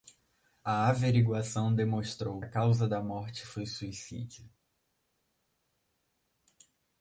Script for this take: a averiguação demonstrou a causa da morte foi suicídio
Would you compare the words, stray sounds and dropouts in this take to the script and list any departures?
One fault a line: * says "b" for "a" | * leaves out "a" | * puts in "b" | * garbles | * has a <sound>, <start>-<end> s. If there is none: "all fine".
all fine